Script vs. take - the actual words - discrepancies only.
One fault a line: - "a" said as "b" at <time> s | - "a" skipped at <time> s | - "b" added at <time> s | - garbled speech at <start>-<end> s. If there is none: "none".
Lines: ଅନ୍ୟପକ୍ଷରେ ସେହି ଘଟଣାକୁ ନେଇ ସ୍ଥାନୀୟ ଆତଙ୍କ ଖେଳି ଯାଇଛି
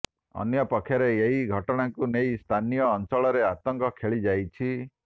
- "ସେହି" said as "ଏହି" at 1.2 s
- "ଅଞ୍ଚଳରେ" added at 2.9 s